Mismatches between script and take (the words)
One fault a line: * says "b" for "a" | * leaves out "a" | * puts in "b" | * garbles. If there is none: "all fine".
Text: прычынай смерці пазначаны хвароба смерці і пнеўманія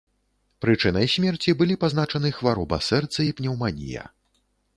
* puts in "былі"
* says "сэрца" for "смерці"